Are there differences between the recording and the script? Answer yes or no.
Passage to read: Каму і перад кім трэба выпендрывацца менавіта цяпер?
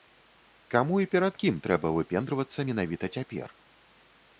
no